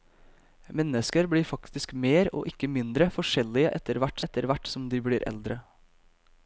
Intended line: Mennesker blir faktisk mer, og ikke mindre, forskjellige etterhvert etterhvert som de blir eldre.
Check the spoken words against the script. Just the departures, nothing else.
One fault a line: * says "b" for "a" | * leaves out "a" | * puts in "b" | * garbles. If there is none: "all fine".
all fine